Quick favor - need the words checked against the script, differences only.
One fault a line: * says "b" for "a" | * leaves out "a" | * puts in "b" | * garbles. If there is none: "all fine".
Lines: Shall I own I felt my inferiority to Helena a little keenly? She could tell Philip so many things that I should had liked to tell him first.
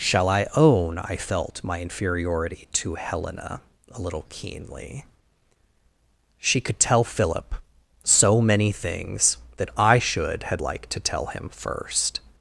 all fine